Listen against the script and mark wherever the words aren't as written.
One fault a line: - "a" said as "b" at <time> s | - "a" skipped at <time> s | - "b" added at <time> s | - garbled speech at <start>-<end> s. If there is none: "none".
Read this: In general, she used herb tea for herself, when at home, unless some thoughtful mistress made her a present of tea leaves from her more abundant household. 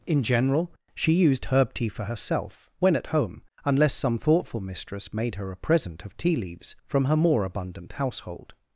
none